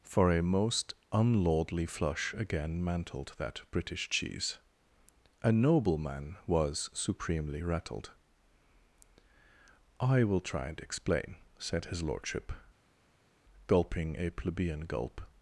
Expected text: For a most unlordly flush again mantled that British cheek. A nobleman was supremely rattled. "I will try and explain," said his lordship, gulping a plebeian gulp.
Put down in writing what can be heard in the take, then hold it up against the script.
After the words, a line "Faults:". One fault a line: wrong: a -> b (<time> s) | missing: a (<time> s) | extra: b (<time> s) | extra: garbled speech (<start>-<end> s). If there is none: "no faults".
For a most unlordly flush again mantled that British cheese. A nobleman was supremely rattled. "I will try and explain," said his lordship, gulping a plebeian gulp.
Faults:
wrong: cheek -> cheese (4.1 s)